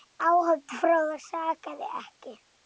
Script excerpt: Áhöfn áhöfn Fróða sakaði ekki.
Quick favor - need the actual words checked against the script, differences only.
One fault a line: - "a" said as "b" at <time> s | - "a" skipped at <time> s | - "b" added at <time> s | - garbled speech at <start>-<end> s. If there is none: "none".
- "áhöfn" skipped at 0.8 s